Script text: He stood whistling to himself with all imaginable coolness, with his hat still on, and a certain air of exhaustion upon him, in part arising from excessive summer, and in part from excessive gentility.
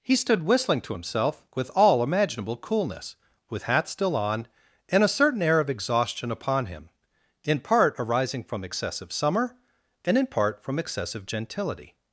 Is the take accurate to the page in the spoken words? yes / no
no